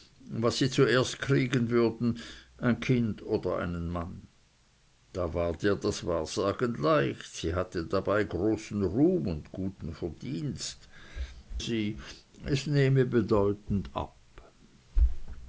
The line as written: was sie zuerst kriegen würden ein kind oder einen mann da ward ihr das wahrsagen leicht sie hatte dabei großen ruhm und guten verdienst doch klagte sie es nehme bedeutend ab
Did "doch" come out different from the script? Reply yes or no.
yes